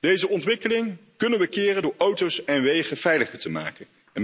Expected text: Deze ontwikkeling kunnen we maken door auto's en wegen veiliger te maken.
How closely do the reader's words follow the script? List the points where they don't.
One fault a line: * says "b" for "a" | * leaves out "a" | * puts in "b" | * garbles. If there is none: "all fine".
* says "keren" for "maken"